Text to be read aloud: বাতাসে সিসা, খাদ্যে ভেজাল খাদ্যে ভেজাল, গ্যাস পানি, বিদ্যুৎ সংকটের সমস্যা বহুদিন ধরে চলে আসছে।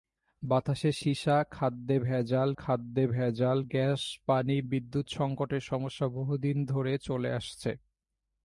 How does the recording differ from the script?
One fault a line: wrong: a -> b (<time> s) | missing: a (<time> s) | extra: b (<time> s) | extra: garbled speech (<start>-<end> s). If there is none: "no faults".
no faults